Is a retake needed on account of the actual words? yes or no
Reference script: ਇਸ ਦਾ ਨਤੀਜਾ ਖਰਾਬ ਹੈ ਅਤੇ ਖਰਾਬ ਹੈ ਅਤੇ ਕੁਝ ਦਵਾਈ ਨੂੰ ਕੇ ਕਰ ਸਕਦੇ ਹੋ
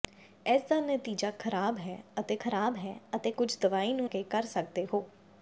no